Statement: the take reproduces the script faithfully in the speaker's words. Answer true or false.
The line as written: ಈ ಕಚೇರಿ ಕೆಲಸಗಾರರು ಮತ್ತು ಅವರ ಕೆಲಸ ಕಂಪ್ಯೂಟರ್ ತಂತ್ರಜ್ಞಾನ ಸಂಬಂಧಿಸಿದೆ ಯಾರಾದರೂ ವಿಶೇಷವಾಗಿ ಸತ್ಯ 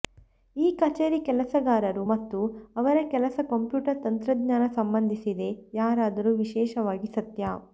true